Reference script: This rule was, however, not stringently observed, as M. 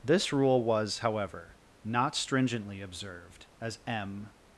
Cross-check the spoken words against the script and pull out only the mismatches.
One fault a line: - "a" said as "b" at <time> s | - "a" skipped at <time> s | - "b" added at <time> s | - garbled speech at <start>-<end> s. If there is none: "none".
none